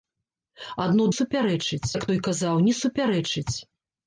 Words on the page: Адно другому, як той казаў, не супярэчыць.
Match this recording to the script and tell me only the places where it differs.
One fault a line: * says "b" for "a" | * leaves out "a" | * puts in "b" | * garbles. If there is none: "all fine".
* says "супярэчыць" for "другому"